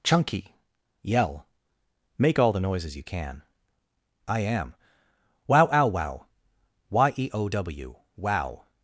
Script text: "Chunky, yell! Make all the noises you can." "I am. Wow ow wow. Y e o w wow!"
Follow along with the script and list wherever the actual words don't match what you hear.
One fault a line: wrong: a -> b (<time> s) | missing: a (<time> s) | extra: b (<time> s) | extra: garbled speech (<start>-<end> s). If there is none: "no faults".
no faults